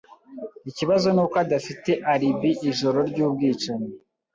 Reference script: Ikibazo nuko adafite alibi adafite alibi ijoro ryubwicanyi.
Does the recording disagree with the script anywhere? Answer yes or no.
yes